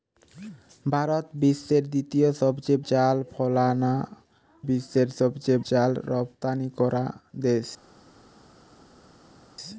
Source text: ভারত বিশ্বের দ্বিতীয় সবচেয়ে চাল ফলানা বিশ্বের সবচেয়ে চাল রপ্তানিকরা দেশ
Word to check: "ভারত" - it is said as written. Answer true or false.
true